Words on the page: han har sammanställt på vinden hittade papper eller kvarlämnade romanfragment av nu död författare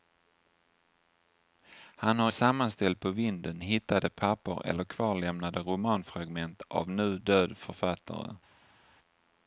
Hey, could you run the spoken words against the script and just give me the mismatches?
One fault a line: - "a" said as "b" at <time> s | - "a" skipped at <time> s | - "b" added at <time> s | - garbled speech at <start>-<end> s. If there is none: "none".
none